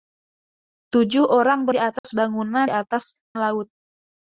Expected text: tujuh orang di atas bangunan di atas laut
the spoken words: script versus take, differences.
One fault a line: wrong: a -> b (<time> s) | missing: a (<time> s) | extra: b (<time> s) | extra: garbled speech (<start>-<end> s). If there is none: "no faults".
no faults